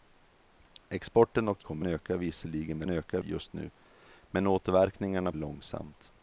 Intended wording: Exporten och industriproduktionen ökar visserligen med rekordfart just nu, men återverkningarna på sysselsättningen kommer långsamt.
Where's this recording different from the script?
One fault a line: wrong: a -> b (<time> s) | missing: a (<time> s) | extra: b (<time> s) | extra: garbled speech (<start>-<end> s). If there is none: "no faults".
wrong: industriproduktionen -> kommer (1.6 s)
wrong: rekordfart -> ökar (2.9 s)
missing: på sysselsättningen kommer (5.3 s)